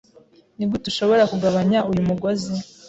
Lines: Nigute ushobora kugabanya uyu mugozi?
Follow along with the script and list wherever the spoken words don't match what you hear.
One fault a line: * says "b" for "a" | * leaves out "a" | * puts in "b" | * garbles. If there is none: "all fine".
all fine